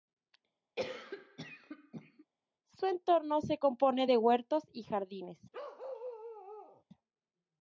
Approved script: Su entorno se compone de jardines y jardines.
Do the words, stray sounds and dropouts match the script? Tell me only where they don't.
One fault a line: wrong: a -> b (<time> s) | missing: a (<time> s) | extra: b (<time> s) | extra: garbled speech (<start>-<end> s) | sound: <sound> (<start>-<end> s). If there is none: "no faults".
sound: cough (0.8-2.3 s)
wrong: jardines -> huertos (4.2 s)
sound: bark (5.5-6.8 s)